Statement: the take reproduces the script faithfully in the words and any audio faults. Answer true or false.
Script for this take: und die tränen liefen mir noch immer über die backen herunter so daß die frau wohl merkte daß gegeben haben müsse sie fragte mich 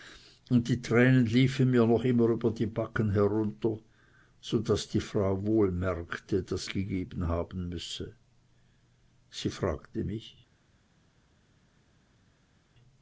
true